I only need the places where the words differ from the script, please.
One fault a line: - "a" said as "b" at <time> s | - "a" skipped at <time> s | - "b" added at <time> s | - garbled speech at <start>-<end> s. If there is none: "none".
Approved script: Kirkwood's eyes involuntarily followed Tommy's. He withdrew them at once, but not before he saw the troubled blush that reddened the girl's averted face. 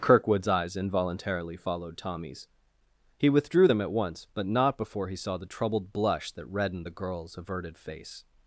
none